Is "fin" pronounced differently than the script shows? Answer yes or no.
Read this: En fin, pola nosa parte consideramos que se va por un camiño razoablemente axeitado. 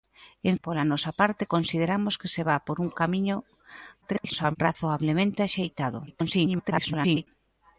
yes